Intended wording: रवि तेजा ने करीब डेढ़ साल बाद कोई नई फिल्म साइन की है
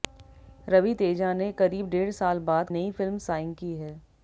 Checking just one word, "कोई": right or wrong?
wrong